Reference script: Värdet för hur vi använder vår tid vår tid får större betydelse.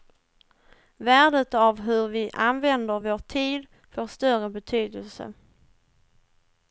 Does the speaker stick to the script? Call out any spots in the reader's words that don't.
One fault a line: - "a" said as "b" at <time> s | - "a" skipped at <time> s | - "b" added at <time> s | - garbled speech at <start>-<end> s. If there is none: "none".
- "för" said as "av" at 1.5 s
- "vår tid" skipped at 3.7 s